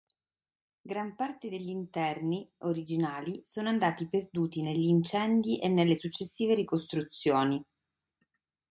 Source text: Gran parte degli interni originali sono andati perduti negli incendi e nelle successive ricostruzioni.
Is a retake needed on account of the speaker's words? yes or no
no